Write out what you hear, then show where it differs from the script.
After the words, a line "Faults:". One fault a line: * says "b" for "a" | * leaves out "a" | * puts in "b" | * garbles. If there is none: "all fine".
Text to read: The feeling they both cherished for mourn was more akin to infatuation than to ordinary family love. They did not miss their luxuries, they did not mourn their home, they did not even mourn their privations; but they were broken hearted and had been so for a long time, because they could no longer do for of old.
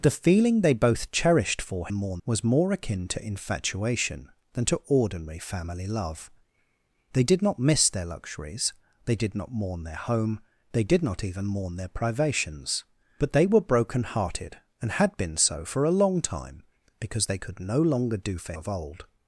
The feeling they both cherished for mourn was more akin to infatuation than to ordinary family love. They did not miss their luxuries, they did not mourn their home, they did not even mourn their privations; but they were broken hearted and had been so for a long time, because they could no longer do for of old.
Faults:
all fine